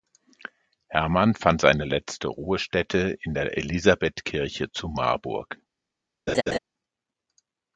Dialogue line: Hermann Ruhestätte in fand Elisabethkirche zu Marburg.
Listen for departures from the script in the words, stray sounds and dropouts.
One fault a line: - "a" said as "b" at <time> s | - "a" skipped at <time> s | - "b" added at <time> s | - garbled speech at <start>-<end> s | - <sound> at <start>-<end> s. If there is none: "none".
- "fand seine letzte" added at 1.3 s
- "fand" said as "der" at 3.3 s
- laugh at 6.3-6.6 s